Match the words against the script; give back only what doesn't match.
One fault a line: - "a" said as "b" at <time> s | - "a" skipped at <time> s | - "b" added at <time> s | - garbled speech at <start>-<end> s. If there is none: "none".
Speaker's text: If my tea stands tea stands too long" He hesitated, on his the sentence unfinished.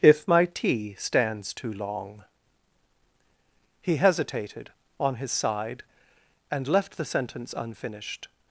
- "tea stands" skipped at 1.5 s
- "side and left" added at 5.3 s